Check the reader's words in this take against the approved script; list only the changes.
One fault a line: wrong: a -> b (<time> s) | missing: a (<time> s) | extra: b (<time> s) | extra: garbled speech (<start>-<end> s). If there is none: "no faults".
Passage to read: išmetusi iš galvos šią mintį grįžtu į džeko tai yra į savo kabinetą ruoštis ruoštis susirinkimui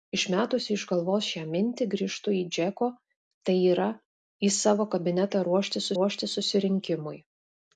no faults